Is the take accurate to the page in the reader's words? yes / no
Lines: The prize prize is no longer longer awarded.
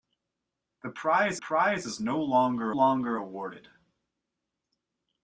yes